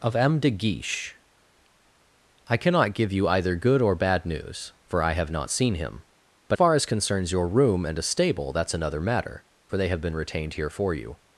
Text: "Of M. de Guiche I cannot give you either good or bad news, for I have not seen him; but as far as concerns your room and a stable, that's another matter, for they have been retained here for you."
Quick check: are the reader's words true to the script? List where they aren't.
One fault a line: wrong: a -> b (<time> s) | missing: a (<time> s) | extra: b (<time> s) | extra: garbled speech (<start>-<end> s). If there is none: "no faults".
missing: as (6.6 s)